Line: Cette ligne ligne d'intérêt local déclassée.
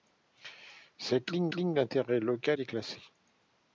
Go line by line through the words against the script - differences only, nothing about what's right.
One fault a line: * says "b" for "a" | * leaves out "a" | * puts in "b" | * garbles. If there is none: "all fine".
all fine